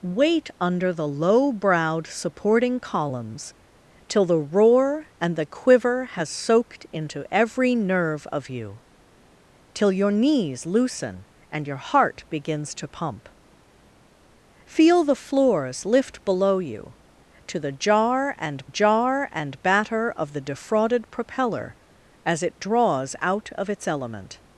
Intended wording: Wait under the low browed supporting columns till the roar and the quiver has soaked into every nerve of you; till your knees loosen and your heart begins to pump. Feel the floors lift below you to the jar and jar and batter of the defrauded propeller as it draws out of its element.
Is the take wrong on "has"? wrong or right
right